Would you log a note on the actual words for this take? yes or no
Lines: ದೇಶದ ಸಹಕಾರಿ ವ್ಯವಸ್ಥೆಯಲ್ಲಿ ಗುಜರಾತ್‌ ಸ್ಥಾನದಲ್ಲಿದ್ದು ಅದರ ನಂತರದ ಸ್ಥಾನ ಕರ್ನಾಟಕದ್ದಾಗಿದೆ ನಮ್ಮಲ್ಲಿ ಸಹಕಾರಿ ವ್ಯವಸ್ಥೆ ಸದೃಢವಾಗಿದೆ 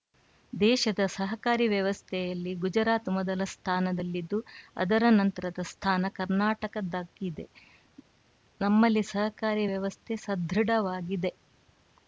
yes